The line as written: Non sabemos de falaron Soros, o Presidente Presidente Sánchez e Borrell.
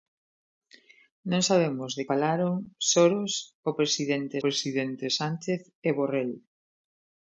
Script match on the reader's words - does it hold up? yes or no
yes